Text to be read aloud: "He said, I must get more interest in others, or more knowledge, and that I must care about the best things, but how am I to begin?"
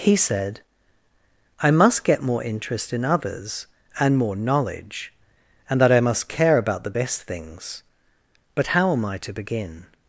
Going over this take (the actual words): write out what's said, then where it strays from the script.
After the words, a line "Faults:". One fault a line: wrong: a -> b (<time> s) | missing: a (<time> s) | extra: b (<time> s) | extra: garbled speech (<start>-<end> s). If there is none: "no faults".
"He said, I must get more interest in others, and more knowledge, and that I must care about the best things, but how am I to begin?"
Faults:
wrong: or -> and (4.0 s)